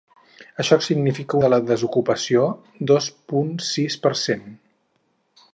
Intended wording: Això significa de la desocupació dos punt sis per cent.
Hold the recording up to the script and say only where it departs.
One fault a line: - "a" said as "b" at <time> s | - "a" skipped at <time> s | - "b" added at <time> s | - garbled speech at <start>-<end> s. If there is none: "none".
none